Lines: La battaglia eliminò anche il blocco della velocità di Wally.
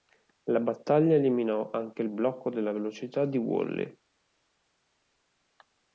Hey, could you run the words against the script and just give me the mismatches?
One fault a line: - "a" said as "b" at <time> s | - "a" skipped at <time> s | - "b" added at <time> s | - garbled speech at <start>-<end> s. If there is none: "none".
none